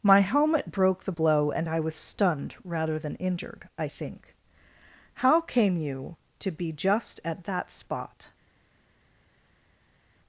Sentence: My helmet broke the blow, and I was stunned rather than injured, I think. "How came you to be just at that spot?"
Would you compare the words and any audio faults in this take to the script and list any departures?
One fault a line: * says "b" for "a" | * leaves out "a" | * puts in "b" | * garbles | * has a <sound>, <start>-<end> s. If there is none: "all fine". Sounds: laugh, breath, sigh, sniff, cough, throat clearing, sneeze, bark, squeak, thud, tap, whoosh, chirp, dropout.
all fine